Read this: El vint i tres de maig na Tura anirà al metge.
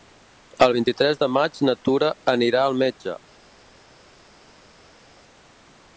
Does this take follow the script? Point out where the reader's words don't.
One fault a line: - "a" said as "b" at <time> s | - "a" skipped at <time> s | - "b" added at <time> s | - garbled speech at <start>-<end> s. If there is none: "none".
none